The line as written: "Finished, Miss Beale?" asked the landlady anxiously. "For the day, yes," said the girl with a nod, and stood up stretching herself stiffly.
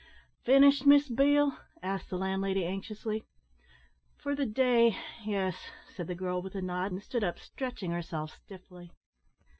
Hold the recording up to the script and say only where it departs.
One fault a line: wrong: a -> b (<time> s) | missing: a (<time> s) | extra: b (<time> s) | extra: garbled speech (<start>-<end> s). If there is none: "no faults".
no faults